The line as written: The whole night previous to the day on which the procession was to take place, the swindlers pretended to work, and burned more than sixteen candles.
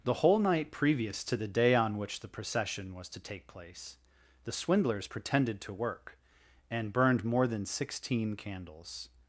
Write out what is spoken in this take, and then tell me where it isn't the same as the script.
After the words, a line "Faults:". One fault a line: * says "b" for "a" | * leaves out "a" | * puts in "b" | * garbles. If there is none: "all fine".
The whole night previous to the day on which the procession was to take place, the swindlers pretended to work, and burned more than sixteen candles.
Faults:
all fine